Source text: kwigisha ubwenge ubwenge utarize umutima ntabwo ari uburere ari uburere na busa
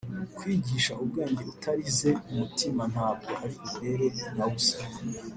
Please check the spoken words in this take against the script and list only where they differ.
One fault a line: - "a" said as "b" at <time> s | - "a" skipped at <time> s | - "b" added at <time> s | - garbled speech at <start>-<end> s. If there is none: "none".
- "ubwenge" skipped at 1.4 s
- "ari uburere" skipped at 4.1 s